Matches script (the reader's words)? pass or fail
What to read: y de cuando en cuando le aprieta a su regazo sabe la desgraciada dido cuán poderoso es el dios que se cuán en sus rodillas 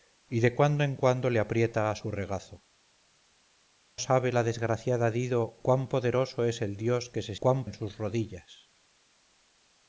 pass